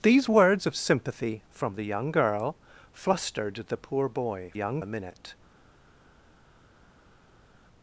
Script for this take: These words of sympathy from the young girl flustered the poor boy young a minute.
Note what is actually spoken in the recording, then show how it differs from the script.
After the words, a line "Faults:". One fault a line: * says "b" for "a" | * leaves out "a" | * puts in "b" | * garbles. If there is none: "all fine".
These words of sympathy from the young girl flustered the poor boy young a minute.
Faults:
all fine